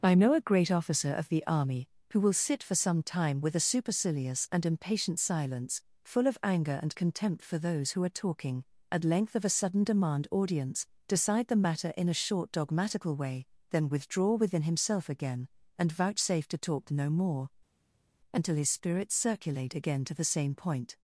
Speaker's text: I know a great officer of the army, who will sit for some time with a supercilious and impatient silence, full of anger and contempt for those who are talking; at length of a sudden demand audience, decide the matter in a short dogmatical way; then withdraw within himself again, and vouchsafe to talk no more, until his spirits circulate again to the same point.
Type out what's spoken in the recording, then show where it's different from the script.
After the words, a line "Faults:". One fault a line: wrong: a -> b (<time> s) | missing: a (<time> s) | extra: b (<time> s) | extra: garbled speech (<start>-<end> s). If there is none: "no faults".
I know a great officer of the army, who will sit for some time with a supercilious and impatient silence, full of anger and contempt for those who are talking; at length of a sudden demand audience, decide the matter in a short dogmatical way; then withdraw within himself again, and vouchsafe to talk no more, until his spirits circulate again to the same point.
Faults:
no faults